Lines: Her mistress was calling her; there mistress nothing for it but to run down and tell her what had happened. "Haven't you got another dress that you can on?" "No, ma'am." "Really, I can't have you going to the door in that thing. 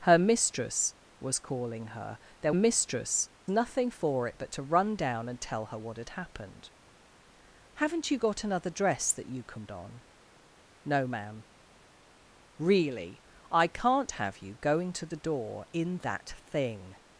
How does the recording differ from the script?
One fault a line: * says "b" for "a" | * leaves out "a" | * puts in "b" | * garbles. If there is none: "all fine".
all fine